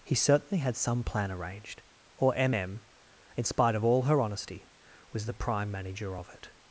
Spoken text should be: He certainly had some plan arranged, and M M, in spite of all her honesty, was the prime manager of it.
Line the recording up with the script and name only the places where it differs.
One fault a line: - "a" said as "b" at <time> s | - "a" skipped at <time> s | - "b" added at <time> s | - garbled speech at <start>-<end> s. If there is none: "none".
- "and" said as "or" at 2.2 s